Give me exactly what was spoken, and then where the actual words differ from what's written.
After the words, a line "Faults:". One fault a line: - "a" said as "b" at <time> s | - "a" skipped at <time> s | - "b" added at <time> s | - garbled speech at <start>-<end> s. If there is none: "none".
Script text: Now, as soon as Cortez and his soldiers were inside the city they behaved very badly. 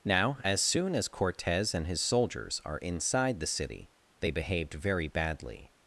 Now, as soon as Cortez and his soldiers are inside the city they behaved very badly.
Faults:
- "were" said as "are" at 2.6 s